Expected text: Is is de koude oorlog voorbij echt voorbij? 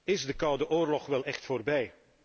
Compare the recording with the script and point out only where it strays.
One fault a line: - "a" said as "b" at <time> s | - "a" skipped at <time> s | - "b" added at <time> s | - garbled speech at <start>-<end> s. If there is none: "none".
- "is" skipped at 0.2 s
- "voorbij" said as "wel" at 1.1 s